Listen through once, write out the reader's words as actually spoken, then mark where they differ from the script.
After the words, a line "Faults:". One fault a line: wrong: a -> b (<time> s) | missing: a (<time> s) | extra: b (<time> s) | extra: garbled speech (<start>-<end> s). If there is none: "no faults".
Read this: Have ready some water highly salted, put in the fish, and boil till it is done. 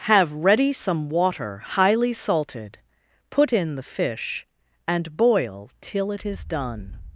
Have ready some water highly salted, put in the fish, and boil till it is done.
Faults:
no faults